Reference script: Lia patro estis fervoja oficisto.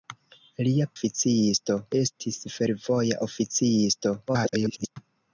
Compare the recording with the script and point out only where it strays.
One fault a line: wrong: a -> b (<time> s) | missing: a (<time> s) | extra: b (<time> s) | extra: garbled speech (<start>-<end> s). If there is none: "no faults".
wrong: patro -> oficisto (1.0 s)
extra: garbled speech (4.3-5.0 s)